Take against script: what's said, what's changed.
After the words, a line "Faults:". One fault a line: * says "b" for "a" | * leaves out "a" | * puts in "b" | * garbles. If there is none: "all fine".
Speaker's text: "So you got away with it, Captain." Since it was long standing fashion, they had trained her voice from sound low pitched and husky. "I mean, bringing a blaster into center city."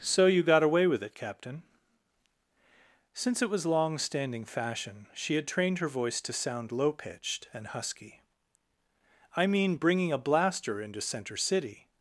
"So you got away with it, Captain." Since it was long standing fashion, she had trained her voice to sound low pitched and husky. "I mean, bringing a blaster into center city."
Faults:
* says "she" for "they"
* says "to" for "from"